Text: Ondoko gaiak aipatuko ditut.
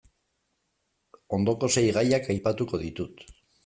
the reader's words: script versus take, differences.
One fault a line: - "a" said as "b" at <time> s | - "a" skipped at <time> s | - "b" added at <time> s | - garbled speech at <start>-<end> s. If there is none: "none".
- "sei" added at 1.8 s